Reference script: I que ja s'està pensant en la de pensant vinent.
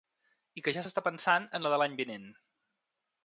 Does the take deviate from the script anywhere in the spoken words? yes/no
yes